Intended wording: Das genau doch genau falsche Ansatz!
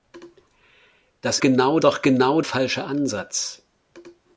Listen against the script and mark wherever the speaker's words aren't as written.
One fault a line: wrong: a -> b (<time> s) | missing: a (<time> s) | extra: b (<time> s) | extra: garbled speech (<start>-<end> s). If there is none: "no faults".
no faults